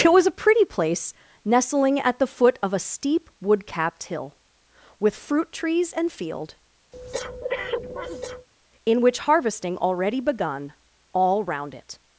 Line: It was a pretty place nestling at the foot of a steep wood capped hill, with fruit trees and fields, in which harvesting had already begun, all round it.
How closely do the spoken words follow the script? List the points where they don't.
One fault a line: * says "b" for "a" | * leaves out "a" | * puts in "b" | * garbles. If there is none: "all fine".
* says "field" for "fields"
* leaves out "had"